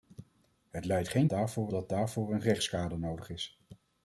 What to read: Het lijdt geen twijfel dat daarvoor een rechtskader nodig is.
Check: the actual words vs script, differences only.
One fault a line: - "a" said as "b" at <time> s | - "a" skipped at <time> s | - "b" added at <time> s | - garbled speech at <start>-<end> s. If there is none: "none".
- "twijfel" said as "daarvoor" at 1.3 s